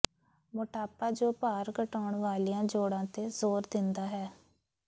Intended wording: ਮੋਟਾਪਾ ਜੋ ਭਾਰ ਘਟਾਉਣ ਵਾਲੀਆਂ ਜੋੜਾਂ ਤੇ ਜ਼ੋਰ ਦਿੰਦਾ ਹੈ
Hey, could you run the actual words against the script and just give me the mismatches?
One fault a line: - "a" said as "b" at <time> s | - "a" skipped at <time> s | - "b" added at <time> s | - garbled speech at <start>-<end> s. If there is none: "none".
none